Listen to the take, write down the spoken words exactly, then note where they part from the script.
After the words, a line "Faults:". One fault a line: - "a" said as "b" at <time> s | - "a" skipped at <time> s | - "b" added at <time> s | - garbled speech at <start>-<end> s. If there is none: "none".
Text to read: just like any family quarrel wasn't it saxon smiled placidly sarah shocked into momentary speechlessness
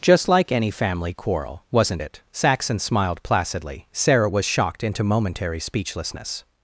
just like any family quarrel wasn't it saxon smiled placidly sarah was shocked into momentary speechlessness
Faults:
- "was" added at 4.3 s